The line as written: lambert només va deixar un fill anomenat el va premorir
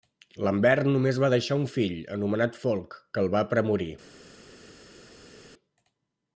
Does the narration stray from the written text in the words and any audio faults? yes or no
yes